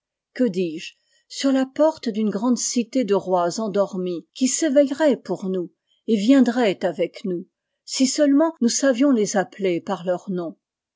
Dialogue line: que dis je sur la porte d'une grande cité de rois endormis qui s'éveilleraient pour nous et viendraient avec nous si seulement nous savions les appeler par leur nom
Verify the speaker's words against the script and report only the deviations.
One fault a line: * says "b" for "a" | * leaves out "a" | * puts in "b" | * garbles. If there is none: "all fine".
all fine